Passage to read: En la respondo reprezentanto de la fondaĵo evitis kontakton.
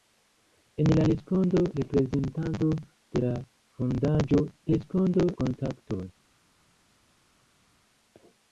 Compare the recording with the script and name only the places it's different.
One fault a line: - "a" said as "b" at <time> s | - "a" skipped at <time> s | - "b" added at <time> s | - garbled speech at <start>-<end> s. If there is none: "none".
- "evitis" said as "respondo" at 4.7 s